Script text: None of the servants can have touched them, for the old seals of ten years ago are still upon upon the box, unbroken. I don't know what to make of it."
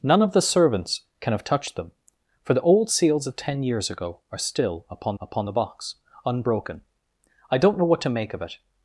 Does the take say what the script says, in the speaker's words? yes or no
yes